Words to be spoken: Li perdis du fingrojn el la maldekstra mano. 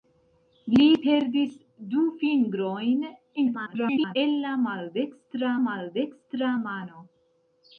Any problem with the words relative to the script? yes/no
yes